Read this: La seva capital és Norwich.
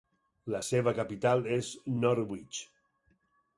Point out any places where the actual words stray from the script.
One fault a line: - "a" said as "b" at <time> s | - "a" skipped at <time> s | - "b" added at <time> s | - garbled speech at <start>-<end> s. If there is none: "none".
none